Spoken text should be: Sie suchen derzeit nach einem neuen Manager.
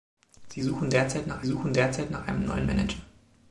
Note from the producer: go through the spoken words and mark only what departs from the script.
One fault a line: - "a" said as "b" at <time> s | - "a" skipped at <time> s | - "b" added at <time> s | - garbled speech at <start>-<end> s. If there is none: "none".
- "suchen derzeit nach" added at 1.4 s